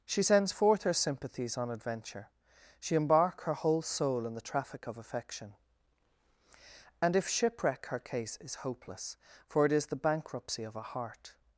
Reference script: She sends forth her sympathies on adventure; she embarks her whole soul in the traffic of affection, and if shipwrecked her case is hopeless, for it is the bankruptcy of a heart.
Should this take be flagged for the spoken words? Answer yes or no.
yes